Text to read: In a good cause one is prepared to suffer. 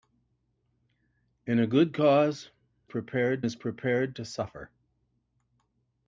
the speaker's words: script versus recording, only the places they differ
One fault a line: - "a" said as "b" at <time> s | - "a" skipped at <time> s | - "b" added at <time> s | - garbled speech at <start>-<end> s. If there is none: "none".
- "one" said as "prepared" at 2.8 s